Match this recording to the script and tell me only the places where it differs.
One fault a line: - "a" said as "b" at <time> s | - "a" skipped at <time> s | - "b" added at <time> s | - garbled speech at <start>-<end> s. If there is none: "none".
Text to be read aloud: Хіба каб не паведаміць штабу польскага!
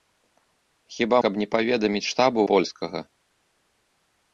none